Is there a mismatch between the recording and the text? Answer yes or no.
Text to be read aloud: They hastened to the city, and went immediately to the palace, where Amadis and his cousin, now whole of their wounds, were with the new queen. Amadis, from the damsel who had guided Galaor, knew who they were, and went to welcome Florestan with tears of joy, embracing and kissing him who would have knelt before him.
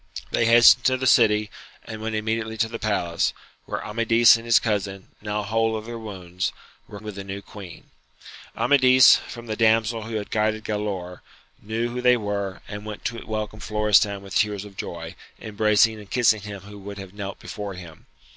no